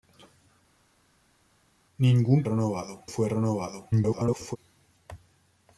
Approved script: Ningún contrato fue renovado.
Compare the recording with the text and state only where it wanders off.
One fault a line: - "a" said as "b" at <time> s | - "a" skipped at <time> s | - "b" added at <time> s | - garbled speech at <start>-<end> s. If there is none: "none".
- "contrato" said as "renovado" at 2.4 s
- garbled speech at 3.9-4.6 s